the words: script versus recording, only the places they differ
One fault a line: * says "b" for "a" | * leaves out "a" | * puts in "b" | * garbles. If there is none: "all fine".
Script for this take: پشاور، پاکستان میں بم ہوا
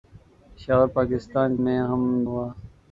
all fine